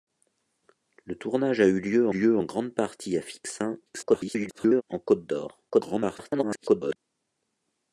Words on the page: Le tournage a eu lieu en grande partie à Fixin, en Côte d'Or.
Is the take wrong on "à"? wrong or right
right